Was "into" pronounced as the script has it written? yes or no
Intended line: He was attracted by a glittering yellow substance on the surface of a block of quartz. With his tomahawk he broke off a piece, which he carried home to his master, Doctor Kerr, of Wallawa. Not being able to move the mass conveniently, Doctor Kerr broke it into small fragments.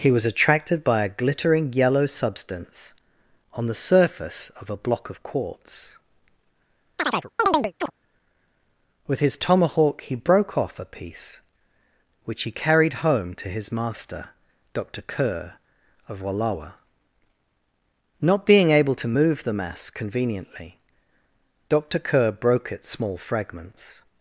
no